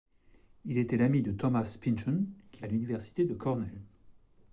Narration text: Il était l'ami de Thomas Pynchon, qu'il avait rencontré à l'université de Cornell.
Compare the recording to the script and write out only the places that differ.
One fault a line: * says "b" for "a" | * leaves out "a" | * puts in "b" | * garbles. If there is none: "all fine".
* leaves out "avait rencontré"